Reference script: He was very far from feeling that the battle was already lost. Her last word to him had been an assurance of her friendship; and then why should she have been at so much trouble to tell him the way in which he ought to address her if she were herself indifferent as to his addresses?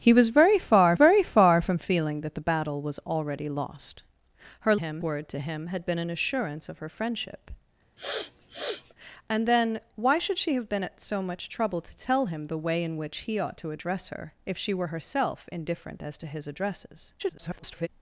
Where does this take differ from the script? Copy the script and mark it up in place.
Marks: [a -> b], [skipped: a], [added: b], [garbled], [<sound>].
He was very far [added: very far] from feeling that the battle was already lost. Her [last -> him] word to him had been an assurance of her friendship; [sniff] and then why should she have been at so much trouble to tell him the way in which he ought to address her if she were herself indifferent as to his addresses? [garbled]